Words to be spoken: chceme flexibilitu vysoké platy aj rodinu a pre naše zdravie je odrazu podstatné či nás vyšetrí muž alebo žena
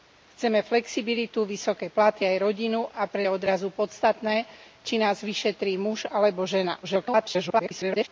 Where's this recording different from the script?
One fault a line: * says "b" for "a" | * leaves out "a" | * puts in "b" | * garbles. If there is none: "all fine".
* leaves out "naše zdravie"
* garbles